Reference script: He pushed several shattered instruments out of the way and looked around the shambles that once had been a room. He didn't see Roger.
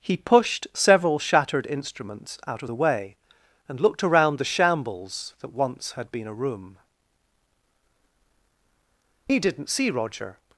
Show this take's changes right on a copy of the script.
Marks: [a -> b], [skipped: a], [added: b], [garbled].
He pushed several shattered instruments out of the way and looked around the shambles that once had been a room. He didn't see Roger.